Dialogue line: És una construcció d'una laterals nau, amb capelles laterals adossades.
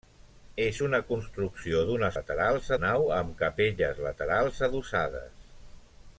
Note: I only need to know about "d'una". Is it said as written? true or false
true